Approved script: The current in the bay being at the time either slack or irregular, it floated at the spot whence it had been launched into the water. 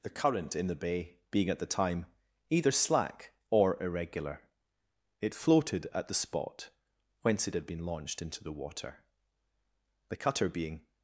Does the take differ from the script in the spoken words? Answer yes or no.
yes